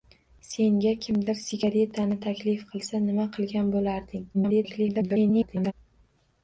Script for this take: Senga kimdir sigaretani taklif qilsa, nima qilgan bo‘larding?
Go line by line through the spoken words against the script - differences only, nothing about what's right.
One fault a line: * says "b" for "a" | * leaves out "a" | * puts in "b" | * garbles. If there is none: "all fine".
* garbles